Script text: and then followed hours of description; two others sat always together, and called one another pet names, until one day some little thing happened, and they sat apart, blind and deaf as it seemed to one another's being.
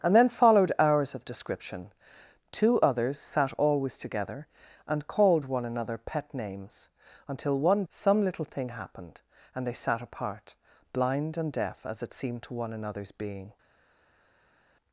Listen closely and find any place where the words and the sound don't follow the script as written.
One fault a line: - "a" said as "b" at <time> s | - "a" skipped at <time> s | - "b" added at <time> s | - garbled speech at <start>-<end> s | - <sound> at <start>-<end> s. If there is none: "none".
- "day" skipped at 7.8 s